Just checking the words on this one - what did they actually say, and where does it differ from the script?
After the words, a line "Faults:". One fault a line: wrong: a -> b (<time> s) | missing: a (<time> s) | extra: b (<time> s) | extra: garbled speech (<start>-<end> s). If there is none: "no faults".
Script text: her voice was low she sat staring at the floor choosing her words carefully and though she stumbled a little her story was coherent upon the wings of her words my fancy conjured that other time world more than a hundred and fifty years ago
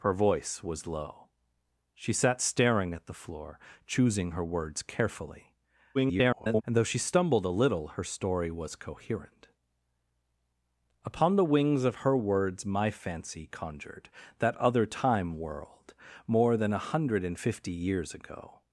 her voice was low she sat staring at the floor choosing her words carefully [garbled] and though she stumbled a little her story was coherent upon the wings of her words my fancy conjured that other time world more than a hundred and fifty years ago
Faults:
extra: garbled speech (5.9-6.6 s)